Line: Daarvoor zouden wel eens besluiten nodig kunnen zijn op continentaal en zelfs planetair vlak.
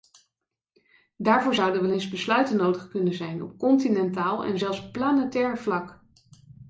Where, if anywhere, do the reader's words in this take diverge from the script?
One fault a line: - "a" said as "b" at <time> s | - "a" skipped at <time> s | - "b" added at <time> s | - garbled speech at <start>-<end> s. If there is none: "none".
none